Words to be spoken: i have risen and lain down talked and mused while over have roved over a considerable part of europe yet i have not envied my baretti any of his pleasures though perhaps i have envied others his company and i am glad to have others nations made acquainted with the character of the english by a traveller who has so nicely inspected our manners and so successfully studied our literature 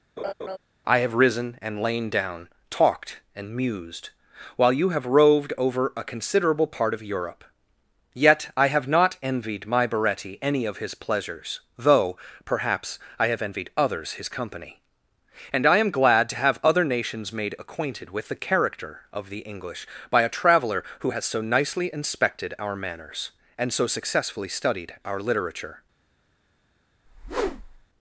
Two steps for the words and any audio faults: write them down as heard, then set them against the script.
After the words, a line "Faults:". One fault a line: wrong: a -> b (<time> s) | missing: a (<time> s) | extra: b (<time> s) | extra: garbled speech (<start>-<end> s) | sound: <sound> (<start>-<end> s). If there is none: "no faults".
i have risen and lain down talked and mused while you have roved over a considerable part of europe yet i have not envied my baretti any of his pleasures though perhaps i have envied others his company and i am glad to have other nations made acquainted with the character of the english by a traveller who has so nicely inspected our manners and so successfully studied our literature
Faults:
sound: laugh (0.2-0.6 s)
wrong: over -> you (4.7 s)
wrong: others -> other (16.6 s)
sound: whoosh (27.1-27.9 s)